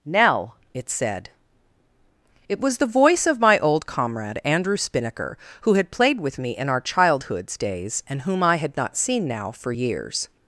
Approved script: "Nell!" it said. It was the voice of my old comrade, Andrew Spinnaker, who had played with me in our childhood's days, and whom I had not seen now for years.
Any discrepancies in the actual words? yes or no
no